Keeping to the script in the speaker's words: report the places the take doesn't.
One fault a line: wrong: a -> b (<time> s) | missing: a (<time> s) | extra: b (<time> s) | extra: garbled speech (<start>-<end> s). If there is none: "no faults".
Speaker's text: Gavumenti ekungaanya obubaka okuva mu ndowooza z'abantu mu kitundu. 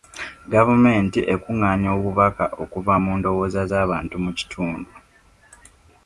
no faults